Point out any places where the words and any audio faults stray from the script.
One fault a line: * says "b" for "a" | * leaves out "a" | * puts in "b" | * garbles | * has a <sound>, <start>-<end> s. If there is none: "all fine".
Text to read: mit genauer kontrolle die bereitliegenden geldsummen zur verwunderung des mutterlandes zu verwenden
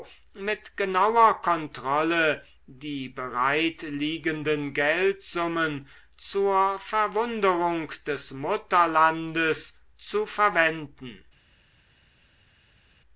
all fine